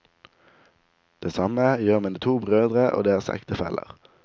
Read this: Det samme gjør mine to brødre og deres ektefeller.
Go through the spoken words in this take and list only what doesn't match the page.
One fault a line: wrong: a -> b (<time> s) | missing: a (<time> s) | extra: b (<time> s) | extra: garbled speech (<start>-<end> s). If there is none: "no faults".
no faults